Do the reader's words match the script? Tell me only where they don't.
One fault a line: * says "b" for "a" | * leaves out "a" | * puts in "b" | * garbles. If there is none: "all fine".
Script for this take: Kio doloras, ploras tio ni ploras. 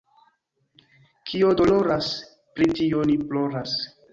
* says "pri" for "ploras"